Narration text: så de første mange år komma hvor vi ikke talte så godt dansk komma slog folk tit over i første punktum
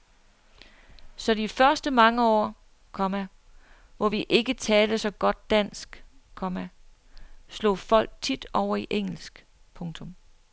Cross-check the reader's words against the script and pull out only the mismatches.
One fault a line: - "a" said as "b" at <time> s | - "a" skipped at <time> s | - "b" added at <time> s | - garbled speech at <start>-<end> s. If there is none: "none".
- "første" said as "engelsk" at 8.9 s